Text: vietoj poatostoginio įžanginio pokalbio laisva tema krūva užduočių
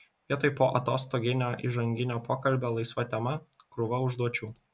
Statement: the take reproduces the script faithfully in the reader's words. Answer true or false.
true